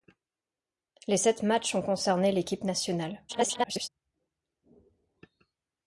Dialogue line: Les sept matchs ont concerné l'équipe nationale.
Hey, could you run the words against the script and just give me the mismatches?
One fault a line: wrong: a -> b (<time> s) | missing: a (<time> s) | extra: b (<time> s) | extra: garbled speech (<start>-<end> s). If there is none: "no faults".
extra: garbled speech (3.3-3.9 s)